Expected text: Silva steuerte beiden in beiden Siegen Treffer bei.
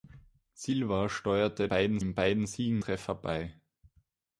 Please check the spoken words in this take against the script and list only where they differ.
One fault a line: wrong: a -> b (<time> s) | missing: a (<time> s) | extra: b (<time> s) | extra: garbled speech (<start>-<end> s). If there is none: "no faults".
no faults